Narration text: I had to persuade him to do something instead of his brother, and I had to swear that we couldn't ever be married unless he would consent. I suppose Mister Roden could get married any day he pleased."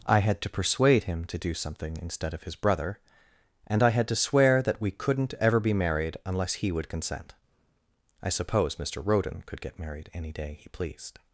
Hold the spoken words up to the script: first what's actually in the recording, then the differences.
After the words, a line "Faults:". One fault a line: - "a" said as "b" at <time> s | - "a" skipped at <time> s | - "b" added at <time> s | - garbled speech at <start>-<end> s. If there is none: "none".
I had to persuade him to do something instead of his brother, and I had to swear that we couldn't ever be married unless he would consent. I suppose Mister Roden could get married any day he pleased."
Faults:
none